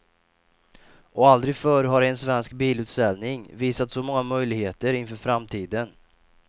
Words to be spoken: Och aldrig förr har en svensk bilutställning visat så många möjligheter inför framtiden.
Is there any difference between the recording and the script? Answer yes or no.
no